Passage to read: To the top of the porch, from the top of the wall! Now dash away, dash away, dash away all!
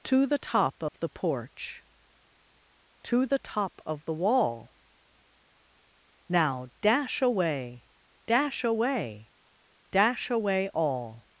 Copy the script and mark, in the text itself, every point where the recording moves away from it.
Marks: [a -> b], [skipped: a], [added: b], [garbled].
To the top of the porch, [from -> to] the top of the wall! Now dash away, dash away, dash away all!